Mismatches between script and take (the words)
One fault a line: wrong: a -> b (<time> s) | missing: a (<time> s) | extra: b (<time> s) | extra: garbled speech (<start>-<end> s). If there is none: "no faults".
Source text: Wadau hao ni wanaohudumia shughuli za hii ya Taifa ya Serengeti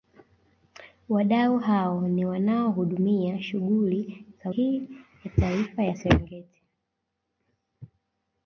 no faults